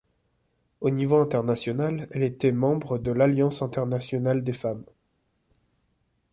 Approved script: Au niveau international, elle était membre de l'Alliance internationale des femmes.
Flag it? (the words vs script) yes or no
no